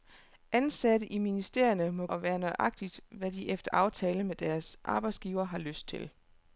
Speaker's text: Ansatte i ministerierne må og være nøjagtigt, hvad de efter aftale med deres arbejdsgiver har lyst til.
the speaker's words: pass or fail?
pass